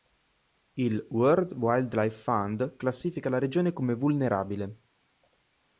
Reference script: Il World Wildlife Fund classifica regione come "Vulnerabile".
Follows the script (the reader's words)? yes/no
no